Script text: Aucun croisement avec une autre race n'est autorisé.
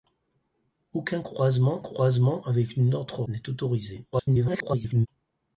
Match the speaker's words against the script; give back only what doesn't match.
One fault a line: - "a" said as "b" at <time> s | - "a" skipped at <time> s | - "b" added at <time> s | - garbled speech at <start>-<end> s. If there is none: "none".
- "croisement" added at 1.8 s
- "race" skipped at 3.2 s
- garbled speech at 4.1-5.1 s